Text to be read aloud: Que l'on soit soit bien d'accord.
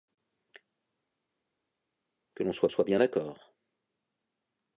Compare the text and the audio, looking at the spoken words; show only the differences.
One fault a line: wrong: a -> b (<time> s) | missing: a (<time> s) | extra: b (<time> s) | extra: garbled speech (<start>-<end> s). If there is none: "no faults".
no faults